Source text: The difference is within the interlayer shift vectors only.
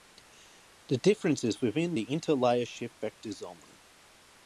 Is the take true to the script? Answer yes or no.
yes